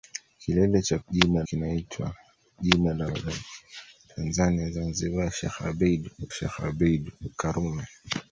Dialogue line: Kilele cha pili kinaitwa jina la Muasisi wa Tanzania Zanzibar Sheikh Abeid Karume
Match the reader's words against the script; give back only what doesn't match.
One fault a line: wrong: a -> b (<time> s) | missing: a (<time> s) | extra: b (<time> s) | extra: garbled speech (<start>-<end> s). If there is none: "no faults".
wrong: pili -> jina (1.1 s)
missing: Muasisi (3.1 s)
extra: Sheikh Abeid (6.3 s)